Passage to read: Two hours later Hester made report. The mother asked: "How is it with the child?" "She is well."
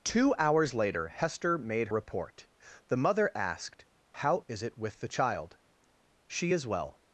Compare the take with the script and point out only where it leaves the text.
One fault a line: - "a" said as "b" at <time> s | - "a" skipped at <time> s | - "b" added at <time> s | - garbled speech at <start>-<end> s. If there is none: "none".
none